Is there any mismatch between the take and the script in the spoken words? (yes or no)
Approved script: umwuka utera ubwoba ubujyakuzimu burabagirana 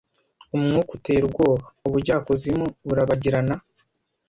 no